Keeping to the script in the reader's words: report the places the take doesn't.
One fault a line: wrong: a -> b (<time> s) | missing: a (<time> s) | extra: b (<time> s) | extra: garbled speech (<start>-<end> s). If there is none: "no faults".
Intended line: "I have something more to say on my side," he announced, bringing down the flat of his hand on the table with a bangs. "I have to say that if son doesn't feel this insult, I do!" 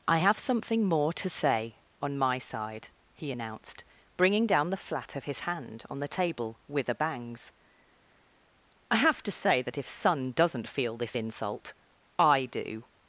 no faults